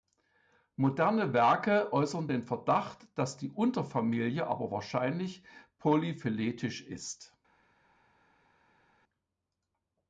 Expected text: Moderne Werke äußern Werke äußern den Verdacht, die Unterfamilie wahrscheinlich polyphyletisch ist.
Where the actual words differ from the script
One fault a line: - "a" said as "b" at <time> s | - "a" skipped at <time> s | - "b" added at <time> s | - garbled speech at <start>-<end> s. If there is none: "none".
- "Werke äußern" skipped at 2.3 s
- "dass" added at 3.2 s
- "aber" added at 4.4 s